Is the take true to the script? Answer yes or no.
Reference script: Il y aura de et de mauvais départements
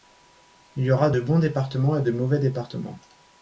no